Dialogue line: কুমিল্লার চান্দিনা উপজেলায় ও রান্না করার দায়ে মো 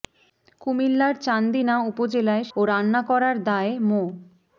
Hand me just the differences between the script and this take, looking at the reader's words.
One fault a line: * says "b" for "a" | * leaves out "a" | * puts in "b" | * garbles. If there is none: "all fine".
all fine